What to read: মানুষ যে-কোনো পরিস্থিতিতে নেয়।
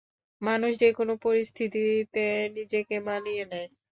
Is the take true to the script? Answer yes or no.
no